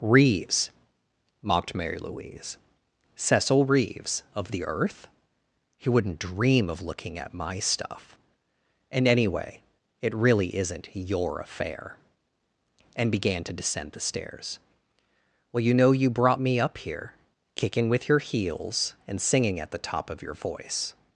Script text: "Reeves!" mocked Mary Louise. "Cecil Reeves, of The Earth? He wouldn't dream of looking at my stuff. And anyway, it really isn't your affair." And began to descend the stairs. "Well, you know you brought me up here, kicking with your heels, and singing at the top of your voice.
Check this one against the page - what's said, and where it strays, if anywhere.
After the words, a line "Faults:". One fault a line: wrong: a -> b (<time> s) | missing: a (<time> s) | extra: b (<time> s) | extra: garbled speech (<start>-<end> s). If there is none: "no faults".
"Reeves!" mocked Mary Louise. "Cecil Reeves, of The Earth? He wouldn't dream of looking at my stuff. And anyway, it really isn't your affair." And began to descend the stairs. "Well, you know you brought me up here, kicking with your heels, and singing at the top of your voice.
Faults:
no faults